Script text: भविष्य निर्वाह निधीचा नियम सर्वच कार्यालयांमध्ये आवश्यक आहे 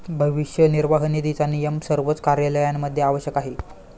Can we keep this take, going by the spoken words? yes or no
yes